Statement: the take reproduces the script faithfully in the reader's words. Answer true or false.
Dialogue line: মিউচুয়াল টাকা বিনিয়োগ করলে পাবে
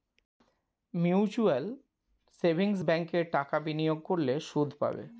false